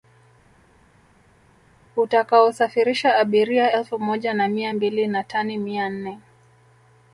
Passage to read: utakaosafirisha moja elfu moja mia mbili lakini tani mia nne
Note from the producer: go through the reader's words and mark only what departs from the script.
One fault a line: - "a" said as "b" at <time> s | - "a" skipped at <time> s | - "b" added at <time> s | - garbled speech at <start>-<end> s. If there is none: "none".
- "moja" said as "abiria" at 3.2 s
- "na" added at 4.3 s
- "lakini" said as "na" at 5.1 s